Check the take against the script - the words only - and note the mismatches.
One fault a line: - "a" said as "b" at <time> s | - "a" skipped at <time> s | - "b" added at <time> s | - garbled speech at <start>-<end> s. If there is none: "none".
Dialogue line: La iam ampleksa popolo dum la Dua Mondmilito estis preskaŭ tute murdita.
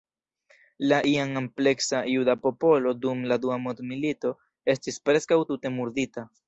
- "juda" added at 2.1 s